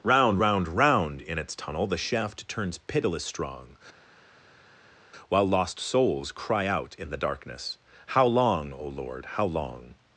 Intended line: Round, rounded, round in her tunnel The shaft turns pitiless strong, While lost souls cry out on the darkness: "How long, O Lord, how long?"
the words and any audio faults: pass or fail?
fail